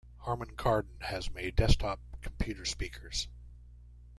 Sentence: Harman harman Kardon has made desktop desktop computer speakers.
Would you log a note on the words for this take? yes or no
yes